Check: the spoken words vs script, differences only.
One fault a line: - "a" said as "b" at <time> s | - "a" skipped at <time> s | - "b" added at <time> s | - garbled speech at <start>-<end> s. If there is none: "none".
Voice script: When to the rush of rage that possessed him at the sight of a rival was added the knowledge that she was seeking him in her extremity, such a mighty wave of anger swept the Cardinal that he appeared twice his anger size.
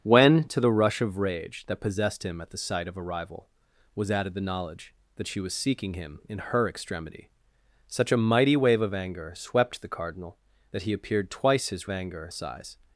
none